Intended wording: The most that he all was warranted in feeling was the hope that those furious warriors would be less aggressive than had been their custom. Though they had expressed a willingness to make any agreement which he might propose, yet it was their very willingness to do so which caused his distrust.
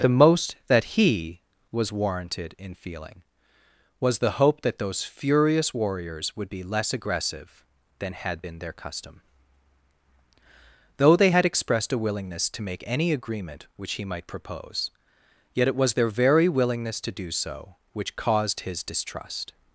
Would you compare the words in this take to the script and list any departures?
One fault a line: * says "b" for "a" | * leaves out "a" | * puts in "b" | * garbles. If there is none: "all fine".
* leaves out "all"